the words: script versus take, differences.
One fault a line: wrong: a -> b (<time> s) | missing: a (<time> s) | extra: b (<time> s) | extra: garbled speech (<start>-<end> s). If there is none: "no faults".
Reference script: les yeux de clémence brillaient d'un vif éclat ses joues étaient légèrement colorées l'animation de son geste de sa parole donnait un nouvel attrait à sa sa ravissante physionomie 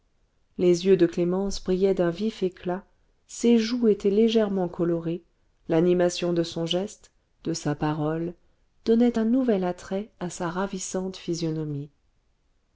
missing: sa (10.5 s)